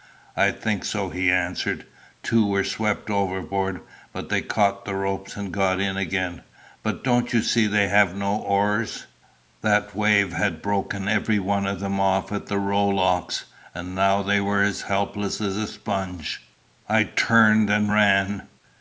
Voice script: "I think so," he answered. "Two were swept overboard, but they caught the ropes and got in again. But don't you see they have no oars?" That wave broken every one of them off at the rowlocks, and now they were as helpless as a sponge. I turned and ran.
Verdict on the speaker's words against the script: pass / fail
fail